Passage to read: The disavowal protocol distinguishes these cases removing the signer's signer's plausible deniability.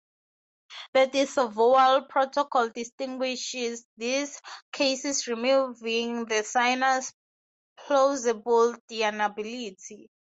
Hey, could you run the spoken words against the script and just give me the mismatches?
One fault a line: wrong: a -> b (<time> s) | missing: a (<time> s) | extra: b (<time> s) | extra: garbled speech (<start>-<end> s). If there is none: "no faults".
missing: signer's (7.1 s)